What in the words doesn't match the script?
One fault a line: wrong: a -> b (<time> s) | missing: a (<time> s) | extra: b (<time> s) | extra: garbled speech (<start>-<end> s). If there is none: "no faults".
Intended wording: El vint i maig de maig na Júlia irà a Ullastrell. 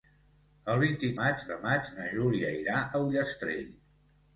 no faults